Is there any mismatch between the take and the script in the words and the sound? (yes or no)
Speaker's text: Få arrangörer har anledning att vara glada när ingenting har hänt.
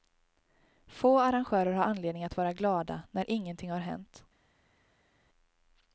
no